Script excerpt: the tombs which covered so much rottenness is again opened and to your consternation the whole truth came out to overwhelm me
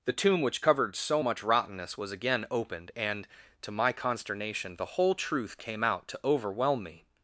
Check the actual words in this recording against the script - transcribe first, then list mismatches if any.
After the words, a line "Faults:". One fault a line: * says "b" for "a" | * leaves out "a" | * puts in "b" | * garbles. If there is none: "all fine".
the tomb which covered so much rottenness was again opened and to my consternation the whole truth came out to overwhelm me
Faults:
* says "tomb" for "tombs"
* says "was" for "is"
* says "my" for "your"